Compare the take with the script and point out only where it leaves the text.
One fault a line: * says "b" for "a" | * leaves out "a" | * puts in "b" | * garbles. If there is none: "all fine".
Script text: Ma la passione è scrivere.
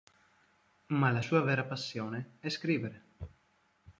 * puts in "sua vera"